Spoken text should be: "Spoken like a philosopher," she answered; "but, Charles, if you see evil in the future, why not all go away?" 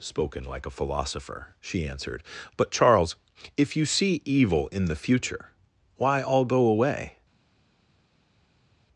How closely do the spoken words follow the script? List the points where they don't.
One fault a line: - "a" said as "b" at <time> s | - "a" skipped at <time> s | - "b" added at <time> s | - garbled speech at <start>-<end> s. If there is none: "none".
- "not" skipped at 6.2 s